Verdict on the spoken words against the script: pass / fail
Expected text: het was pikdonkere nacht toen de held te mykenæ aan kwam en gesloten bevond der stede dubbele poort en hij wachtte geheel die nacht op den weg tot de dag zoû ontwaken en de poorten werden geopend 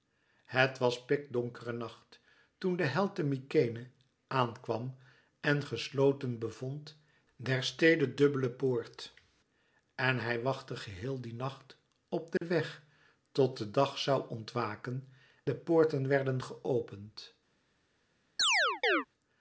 fail